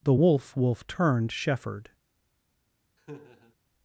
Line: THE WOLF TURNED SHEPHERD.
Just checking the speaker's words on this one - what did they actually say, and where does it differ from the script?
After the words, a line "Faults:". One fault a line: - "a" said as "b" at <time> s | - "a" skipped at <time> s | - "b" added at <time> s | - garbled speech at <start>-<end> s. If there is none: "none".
THE WOLF WOLF TURNED SHEPHERD.
Faults:
- "WOLF" added at 0.6 s